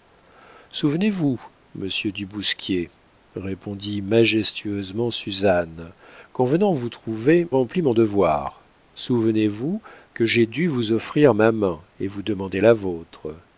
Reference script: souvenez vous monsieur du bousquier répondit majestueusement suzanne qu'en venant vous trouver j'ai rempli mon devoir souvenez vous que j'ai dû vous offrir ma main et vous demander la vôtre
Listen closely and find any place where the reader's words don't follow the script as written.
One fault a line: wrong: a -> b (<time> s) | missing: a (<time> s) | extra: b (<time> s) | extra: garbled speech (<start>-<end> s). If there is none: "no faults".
missing: j'ai (7.5 s)